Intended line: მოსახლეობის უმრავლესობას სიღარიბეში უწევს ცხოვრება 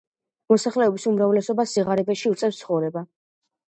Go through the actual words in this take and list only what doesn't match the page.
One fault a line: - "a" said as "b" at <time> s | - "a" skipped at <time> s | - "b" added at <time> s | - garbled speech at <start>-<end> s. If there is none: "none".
none